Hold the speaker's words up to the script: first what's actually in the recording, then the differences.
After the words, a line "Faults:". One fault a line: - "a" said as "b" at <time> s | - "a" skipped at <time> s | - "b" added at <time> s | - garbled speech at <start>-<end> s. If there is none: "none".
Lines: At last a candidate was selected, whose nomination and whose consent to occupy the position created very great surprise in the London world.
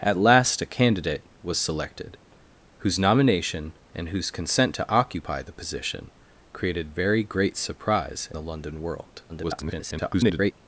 At last a candidate was selected, whose nomination and whose consent to occupy the position created very great surprise the London world. [garbled]
Faults:
- "in" skipped at 8.3 s
- garbled speech at 9.3-10.5 s